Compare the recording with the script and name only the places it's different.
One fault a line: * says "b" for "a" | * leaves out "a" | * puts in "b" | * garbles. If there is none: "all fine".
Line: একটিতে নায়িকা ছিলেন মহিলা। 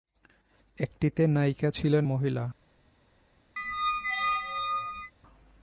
all fine